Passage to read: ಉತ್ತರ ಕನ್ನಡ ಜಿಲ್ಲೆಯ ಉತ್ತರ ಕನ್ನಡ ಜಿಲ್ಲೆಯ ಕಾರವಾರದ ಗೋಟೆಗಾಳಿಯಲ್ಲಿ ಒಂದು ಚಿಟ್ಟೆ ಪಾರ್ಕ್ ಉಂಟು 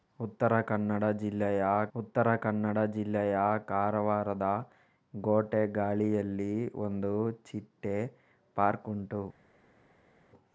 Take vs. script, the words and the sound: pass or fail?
pass